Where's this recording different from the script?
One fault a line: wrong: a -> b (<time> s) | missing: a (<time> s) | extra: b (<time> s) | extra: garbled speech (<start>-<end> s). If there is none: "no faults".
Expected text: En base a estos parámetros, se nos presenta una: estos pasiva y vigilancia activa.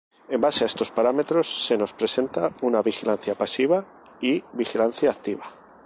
wrong: estos -> vigilancia (2.8 s)